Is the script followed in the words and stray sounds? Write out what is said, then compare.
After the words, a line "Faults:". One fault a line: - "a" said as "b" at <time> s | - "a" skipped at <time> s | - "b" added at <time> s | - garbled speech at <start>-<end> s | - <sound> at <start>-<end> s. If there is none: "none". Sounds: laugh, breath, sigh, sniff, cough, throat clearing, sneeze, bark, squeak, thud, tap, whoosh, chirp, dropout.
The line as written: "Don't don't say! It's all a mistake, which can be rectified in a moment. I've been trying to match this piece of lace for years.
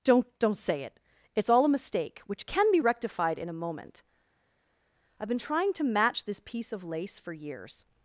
"Don't don't say it! It's all a mistake, which can be rectified in a moment. I've been trying to match this piece of lace for years.
Faults:
- "it" added at 0.8 s